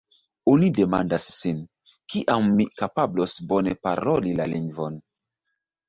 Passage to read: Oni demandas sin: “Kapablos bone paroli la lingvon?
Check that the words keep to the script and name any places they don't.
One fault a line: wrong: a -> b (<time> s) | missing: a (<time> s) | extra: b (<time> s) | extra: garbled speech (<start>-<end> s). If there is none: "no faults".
extra: Kiam mi (2.1 s)